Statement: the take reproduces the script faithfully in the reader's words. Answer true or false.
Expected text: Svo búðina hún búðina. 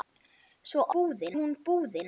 true